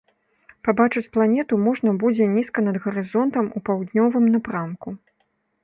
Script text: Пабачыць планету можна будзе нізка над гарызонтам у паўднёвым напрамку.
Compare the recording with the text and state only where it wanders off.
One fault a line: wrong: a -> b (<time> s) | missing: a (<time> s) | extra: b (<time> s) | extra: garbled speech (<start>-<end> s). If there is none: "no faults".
no faults